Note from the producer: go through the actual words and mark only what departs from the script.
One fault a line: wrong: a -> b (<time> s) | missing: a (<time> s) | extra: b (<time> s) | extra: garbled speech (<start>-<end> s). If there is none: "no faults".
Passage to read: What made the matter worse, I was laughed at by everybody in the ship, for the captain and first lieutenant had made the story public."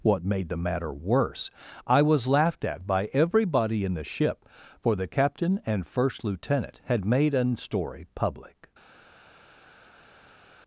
wrong: the -> an (7.3 s)